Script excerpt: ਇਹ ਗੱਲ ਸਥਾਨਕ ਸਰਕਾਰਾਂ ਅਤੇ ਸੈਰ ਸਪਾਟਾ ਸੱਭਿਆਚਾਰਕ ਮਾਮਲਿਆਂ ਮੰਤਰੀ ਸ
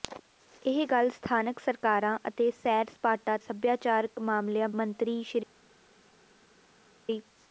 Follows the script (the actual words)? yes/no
yes